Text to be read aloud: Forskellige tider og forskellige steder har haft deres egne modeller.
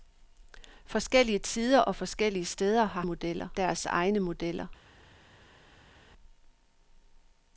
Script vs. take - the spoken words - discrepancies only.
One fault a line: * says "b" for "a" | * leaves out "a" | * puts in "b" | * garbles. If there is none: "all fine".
* says "modeller" for "haft"